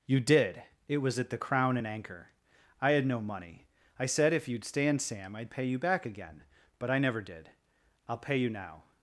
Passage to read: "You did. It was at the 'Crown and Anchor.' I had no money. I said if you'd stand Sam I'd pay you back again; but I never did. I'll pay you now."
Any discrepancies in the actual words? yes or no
no